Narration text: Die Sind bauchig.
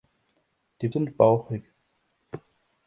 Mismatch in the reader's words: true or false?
false